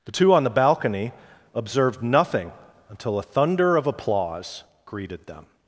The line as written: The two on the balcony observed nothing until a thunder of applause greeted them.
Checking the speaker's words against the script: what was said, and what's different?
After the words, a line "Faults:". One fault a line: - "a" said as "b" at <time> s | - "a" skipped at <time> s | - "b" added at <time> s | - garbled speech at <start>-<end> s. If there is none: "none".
The two on the balcony observed nothing until a thunder of applause greeted them.
Faults:
none